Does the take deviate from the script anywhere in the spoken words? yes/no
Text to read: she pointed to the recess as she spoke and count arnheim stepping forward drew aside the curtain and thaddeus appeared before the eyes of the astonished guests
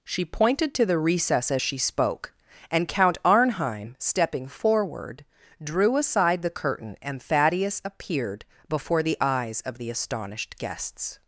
no